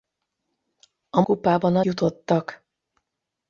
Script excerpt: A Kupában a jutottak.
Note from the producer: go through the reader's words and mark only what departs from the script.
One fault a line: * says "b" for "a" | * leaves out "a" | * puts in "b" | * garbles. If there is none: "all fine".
all fine